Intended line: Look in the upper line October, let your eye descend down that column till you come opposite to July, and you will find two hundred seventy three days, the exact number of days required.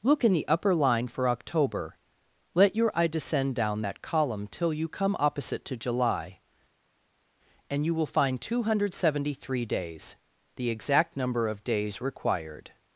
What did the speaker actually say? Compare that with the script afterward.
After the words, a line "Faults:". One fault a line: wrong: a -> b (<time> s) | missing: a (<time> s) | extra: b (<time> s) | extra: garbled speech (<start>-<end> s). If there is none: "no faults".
Look in the upper line for October, let your eye descend down that column till you come opposite to July, and you will find two hundred seventy three days, the exact number of days required.
Faults:
extra: for (1.1 s)